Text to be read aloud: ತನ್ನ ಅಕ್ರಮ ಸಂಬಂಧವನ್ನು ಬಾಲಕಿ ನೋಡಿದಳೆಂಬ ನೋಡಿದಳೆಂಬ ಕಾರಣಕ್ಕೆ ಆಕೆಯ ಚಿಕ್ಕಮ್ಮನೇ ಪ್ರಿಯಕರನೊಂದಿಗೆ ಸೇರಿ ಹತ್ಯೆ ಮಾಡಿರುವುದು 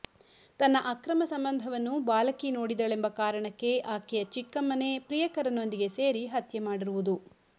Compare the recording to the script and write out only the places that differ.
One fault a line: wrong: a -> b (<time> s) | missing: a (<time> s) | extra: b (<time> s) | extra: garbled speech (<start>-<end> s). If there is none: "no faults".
missing: ನೋಡಿದಳೆಂಬ (3.1 s)